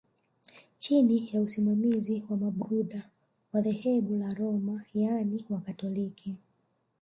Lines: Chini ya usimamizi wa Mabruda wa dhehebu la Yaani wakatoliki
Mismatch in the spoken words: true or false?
true